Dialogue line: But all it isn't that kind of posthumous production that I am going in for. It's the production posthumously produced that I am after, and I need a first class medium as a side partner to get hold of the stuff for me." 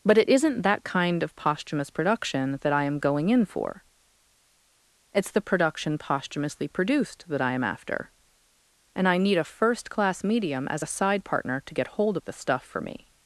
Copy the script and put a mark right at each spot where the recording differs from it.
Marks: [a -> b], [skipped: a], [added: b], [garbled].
But [skipped: all] it isn't that kind of posthumous production that I am going in for. It's the production posthumously produced that I am after, and I need a first class medium as a side partner to get hold of the stuff for me."